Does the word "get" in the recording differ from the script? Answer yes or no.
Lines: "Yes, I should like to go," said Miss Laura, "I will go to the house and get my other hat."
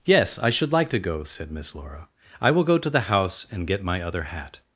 no